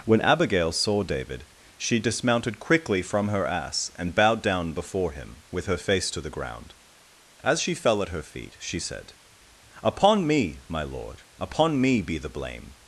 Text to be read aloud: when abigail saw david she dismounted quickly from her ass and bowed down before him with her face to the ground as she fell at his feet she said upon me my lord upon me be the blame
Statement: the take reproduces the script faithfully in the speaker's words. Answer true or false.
false